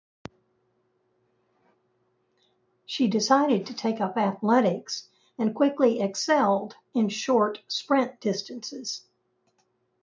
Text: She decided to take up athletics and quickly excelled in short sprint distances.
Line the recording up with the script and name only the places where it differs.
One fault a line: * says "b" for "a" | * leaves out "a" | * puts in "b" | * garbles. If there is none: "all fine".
all fine